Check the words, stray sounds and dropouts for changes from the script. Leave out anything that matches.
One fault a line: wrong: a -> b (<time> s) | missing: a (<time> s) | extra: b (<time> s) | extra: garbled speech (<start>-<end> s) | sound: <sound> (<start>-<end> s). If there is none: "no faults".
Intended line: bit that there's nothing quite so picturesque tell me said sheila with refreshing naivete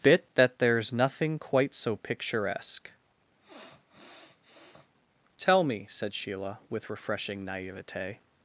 sound: sniff (3.4-4.9 s)